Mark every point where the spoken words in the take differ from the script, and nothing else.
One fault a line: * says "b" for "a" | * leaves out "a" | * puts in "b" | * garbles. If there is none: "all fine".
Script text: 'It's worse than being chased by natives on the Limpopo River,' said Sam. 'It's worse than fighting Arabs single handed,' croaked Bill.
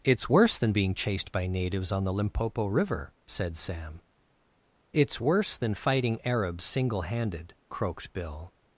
all fine